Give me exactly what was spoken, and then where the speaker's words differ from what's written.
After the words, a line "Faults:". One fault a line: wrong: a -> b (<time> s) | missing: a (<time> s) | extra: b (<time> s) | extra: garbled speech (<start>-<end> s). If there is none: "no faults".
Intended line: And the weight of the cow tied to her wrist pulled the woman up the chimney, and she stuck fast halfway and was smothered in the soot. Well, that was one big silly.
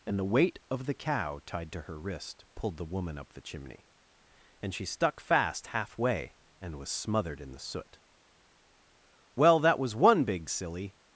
And the weight of the cow tied to her wrist pulled the woman up the chimney, and she stuck fast halfway and was smothered in the soot. Well, that was one big silly.
Faults:
no faults